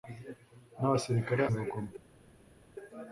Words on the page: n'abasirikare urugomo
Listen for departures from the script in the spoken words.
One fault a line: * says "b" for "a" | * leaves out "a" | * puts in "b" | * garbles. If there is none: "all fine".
all fine